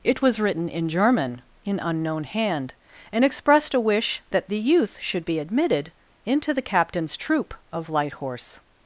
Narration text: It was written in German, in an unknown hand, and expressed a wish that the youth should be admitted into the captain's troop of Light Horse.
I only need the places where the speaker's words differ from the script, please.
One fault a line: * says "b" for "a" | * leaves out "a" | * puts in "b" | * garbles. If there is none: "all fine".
* leaves out "an"